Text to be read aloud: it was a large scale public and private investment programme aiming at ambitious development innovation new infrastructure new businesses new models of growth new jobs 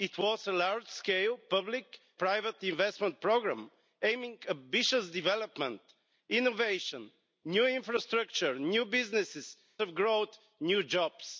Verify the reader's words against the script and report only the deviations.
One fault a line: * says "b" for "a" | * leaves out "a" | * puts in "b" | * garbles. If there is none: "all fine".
* leaves out "and"
* leaves out "new models"